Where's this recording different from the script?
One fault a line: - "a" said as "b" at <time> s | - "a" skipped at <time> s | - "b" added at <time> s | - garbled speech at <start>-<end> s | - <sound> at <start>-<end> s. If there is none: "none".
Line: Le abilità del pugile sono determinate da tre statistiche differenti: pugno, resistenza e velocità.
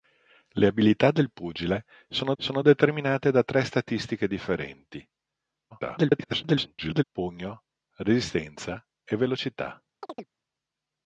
- "sono" added at 2.4 s
- garbled speech at 5.7-7.0 s
- chirp at 10.0-10.3 s